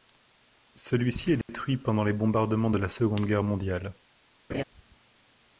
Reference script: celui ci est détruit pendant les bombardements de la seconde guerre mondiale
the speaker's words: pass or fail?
pass